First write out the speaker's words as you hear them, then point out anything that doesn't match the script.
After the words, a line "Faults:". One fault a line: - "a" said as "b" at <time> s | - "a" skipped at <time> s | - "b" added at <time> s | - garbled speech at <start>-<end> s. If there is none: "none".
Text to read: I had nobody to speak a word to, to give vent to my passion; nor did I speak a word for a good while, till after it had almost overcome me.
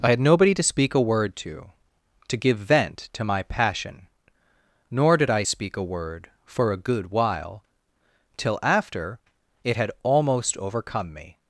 I had nobody to speak a word to, to give vent to my passion; nor did I speak a word for a good while, till after it had almost overcome me.
Faults:
none